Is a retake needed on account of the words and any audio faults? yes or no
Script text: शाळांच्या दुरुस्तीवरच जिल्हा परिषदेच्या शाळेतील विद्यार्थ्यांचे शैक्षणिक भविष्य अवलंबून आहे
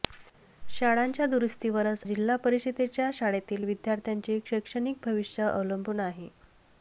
no